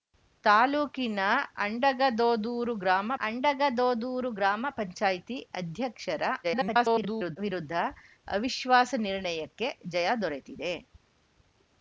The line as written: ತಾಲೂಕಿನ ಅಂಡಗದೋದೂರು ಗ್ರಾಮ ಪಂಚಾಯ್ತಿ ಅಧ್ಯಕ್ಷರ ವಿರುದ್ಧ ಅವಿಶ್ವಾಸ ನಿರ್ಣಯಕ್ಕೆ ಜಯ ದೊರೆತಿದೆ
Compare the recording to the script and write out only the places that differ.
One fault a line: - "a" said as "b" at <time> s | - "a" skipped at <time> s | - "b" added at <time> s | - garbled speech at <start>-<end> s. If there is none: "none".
- "ಅಂಡಗದೋದೂರು ಗ್ರಾಮ" added at 3.2 s
- garbled speech at 6.4-7.4 s